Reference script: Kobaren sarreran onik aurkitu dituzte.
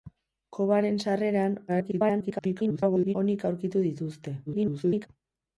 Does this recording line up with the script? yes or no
no